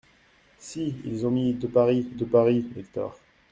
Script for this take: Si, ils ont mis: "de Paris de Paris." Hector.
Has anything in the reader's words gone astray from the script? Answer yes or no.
no